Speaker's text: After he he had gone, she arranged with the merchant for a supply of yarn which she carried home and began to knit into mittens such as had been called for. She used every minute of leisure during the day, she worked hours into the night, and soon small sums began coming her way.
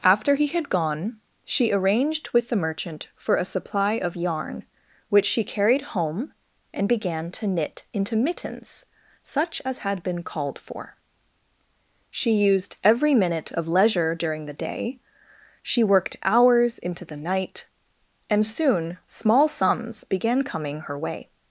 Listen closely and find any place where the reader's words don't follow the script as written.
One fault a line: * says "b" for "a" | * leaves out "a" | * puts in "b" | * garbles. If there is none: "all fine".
* leaves out "he"